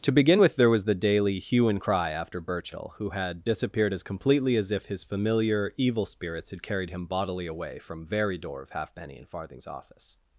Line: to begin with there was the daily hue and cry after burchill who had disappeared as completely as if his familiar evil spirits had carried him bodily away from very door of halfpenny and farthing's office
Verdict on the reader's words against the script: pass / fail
pass